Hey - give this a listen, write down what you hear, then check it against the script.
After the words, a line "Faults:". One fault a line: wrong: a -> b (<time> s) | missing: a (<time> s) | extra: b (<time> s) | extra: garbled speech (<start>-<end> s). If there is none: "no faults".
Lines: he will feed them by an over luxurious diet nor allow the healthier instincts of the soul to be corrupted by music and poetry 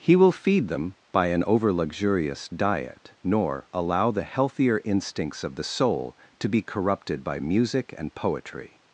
he will feed them by an over luxurious diet nor allow the healthier instincts of the soul to be corrupted by music and poetry
Faults:
no faults